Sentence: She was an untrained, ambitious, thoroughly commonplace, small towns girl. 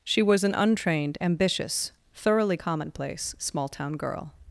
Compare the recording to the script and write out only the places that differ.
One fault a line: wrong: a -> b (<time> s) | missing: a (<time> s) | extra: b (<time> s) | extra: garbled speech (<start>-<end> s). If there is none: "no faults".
wrong: towns -> town (3.7 s)